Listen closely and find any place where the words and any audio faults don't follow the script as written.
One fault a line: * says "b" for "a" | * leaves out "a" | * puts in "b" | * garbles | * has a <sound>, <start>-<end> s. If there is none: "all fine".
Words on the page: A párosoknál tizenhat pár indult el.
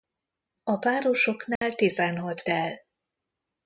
* has a dropout, 1.6-1.6 s
* leaves out "pár indult"